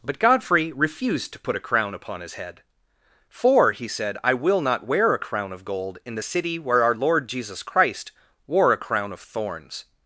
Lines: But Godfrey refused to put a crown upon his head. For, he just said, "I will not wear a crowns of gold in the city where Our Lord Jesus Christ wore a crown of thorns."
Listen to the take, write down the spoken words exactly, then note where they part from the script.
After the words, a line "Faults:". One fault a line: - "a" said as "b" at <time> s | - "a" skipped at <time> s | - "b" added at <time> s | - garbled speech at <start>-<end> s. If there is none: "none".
But Godfrey refused to put a crown upon his head. For, he said, "I will not wear a crown of gold in the city where Our Lord Jesus Christ wore a crown of thorns."
Faults:
- "just" skipped at 3.9 s
- "crowns" said as "crown" at 5.2 s